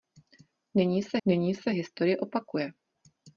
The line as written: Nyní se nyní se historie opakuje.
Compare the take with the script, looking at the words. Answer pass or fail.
pass